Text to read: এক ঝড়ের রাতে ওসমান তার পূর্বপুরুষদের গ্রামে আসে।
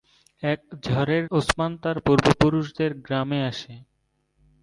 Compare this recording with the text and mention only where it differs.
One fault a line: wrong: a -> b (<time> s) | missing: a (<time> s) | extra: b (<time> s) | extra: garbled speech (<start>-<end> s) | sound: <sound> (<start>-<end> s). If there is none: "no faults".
missing: রাতে (1.2 s)